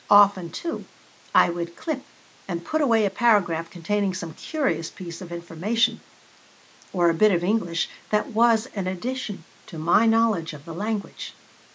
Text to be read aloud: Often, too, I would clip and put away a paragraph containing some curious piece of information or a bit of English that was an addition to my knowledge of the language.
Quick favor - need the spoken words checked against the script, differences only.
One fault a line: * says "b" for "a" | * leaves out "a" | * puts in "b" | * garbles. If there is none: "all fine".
all fine